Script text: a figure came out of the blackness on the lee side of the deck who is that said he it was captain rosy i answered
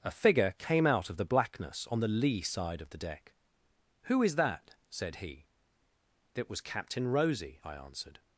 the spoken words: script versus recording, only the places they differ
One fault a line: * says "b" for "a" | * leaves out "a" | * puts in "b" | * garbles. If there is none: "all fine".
all fine